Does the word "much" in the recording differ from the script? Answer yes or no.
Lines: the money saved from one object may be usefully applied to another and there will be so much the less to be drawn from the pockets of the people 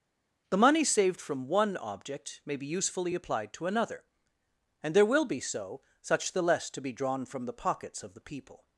yes